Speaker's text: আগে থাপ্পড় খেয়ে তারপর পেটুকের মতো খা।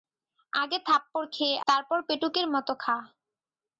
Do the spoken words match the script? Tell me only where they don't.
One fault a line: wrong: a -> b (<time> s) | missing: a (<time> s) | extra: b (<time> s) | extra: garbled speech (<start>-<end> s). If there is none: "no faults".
no faults